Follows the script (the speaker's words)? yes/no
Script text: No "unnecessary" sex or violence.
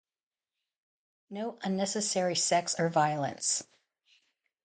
yes